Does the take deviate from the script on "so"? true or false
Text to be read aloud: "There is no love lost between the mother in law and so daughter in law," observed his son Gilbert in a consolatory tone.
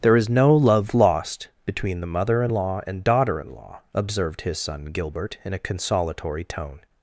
true